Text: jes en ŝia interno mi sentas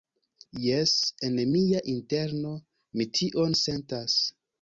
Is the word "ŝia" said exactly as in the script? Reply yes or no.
no